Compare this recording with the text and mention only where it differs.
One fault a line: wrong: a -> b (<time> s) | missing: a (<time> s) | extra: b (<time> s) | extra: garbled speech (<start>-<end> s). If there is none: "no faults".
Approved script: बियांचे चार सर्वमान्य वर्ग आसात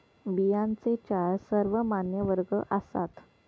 no faults